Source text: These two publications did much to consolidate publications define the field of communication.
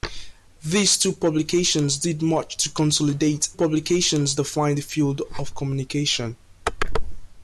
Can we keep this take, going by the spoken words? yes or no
yes